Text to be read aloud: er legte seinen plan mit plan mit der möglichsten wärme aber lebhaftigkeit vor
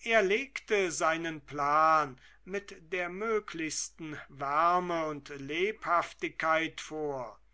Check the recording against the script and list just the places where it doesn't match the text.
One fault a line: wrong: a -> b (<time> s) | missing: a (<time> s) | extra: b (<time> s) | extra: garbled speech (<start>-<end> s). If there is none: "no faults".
missing: plan mit (2.9 s)
wrong: aber -> und (5.0 s)